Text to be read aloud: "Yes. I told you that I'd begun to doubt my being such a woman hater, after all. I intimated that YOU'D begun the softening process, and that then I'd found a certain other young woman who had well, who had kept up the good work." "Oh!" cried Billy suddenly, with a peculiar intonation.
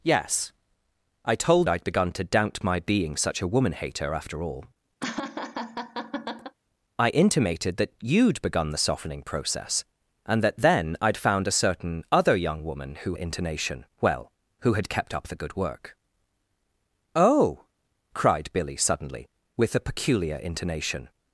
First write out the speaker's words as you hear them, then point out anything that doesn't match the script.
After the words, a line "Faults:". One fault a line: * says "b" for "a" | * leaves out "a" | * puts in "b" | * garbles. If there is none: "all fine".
"Yes. I told I'd begun to doubt my being such a woman hater, after all. I intimated that YOU'D begun the softening process, and that then I'd found a certain other young woman who intonation well, who had kept up the good work." "Oh!" cried Billy suddenly, with a peculiar intonation.
Faults:
* leaves out "you that"
* says "intonation" for "had"